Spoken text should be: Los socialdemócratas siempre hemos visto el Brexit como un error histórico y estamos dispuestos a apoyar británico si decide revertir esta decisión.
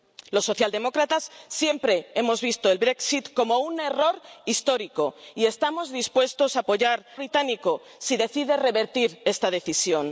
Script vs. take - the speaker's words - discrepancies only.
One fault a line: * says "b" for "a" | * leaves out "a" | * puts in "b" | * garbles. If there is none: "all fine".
all fine